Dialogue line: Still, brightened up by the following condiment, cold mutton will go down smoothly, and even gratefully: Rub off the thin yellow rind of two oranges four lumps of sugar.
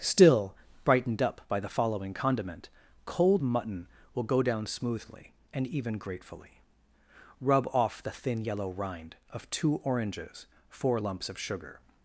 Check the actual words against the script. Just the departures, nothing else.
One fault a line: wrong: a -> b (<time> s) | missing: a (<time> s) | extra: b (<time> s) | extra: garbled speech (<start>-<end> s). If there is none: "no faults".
no faults